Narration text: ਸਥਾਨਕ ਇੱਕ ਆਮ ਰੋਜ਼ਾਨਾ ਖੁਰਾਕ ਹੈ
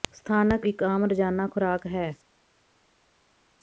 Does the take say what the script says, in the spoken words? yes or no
yes